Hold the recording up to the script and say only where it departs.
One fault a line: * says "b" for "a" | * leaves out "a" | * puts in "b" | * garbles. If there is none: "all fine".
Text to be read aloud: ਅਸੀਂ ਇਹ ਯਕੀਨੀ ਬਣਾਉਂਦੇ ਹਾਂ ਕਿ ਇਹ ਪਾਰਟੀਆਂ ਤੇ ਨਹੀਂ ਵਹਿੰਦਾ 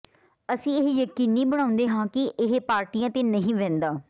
all fine